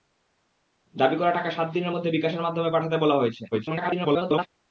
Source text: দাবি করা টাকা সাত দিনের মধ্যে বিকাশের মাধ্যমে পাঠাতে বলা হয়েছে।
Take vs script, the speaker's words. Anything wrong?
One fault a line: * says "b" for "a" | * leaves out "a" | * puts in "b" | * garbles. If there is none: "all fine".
* garbles